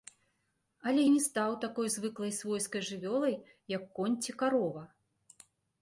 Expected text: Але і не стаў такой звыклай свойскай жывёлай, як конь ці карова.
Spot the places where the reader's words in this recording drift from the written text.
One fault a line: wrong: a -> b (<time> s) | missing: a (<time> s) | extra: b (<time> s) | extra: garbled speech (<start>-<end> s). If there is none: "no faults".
no faults